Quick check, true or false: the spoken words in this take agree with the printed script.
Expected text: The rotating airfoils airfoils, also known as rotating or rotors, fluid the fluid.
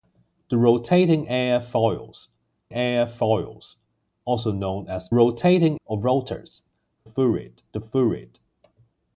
true